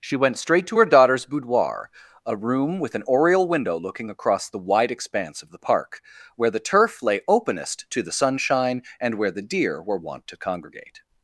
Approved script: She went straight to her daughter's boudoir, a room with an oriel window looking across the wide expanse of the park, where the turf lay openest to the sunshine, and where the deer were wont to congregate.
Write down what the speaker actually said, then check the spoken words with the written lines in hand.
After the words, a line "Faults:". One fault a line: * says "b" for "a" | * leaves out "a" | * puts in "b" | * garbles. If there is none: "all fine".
She went straight to her daughter's boudoir, a room with an oriel window looking across the wide expanse of the park, where the turf lay openest to the sunshine, and where the deer were wont to congregate.
Faults:
all fine